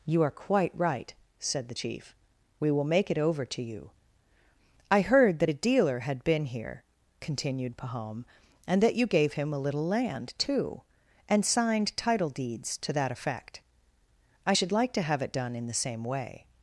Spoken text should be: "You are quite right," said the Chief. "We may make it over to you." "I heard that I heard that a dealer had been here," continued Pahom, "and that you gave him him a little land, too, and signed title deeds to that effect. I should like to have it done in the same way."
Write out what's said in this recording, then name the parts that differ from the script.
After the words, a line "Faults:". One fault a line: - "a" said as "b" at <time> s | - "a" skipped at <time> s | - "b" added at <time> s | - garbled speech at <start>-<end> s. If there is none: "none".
"You are quite right," said the Chief. "We will make it over to you." "I heard that a dealer had been here," continued Pahom, "and that you gave him a little land, too, and signed title deeds to that effect. I should like to have it done in the same way."
Faults:
- "may" said as "will" at 2.7 s
- "I heard that" skipped at 5.5 s
- "him" skipped at 9.5 s